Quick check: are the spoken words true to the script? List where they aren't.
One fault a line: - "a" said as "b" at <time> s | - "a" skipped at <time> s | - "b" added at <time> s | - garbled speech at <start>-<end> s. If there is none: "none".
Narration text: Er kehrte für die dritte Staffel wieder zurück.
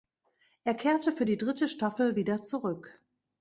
none